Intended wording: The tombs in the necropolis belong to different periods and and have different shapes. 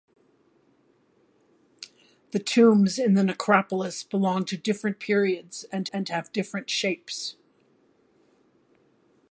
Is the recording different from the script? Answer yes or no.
no